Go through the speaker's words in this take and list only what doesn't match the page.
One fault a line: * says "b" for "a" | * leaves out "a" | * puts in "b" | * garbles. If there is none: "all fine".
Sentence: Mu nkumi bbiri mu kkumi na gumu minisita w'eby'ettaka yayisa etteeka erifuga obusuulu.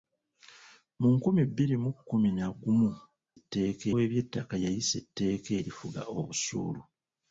* says "etteeka" for "minisita"